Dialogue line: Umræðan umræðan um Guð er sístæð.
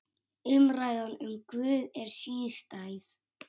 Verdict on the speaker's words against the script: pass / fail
fail